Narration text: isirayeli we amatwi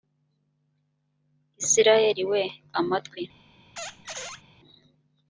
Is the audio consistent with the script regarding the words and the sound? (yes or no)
no